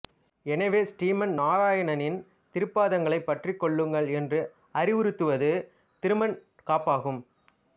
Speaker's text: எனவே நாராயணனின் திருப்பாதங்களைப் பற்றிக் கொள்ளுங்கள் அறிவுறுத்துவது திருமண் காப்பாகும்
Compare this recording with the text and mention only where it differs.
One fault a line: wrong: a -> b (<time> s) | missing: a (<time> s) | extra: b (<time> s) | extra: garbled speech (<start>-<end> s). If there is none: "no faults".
extra: ஸ்ரீமன் (0.8 s)
extra: என்று (4.2 s)